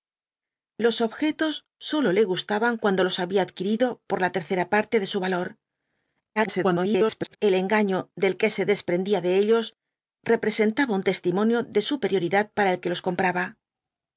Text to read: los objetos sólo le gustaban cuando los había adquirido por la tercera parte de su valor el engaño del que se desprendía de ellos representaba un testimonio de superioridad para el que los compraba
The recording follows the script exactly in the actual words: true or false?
false